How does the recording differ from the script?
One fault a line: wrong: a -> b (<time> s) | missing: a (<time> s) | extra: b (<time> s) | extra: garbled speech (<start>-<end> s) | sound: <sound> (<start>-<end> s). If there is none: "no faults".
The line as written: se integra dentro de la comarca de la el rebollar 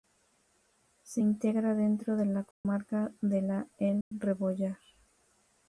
sound: dropout (2.5-2.6 s)
sound: dropout (4.0-4.1 s)